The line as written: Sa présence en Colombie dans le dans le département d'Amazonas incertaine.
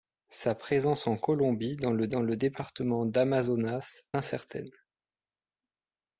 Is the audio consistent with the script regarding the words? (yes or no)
yes